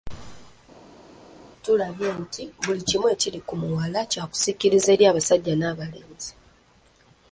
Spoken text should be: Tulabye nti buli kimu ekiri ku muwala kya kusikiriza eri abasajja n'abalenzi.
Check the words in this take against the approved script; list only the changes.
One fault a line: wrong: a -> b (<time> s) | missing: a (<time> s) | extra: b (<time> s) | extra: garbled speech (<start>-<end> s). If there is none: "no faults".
no faults